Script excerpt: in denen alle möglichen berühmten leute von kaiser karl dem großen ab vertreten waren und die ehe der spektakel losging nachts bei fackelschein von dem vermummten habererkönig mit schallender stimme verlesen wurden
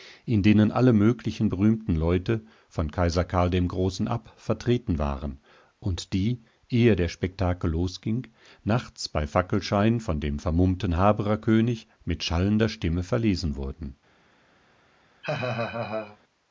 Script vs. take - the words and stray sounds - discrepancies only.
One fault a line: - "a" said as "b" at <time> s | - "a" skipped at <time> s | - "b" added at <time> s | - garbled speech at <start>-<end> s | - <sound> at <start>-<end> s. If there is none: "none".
- laugh at 15.2-16.2 s